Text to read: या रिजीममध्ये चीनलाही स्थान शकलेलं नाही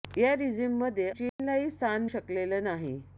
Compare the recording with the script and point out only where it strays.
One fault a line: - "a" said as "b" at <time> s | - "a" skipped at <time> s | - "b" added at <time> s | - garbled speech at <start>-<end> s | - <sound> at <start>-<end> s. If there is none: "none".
- dropout at 1.3-1.4 s